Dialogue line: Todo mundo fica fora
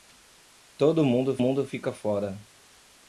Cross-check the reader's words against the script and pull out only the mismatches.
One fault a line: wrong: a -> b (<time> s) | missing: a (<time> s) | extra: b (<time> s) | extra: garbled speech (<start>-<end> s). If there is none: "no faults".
extra: mundo (1.4 s)